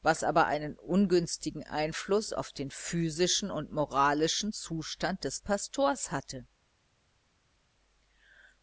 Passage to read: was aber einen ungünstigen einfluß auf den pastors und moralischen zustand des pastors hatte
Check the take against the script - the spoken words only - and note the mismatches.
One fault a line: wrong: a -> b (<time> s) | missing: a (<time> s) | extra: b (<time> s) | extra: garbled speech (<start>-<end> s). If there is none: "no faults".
wrong: pastors -> physischen (2.7 s)